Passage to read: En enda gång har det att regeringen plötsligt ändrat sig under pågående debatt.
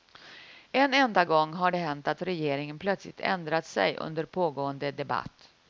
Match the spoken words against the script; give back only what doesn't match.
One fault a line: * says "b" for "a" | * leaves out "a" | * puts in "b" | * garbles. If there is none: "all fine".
* puts in "hänt"